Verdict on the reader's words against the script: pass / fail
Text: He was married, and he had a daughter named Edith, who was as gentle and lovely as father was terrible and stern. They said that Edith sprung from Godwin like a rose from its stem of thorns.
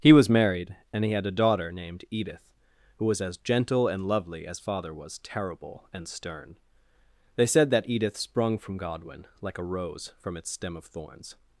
pass